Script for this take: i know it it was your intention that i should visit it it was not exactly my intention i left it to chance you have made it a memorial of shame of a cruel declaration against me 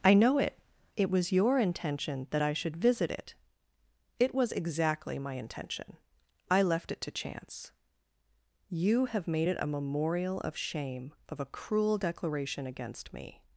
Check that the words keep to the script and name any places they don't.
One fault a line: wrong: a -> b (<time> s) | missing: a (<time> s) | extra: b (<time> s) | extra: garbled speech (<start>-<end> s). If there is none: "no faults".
missing: not (4.5 s)